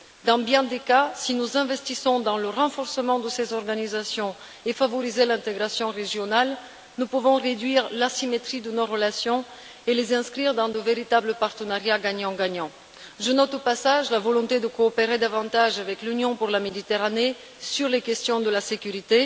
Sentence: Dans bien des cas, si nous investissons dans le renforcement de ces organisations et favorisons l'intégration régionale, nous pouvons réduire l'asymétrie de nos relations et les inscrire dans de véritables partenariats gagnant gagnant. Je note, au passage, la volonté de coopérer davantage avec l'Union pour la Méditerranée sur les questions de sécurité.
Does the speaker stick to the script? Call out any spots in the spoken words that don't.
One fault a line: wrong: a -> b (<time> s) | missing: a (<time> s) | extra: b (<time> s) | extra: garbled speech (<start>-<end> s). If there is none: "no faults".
no faults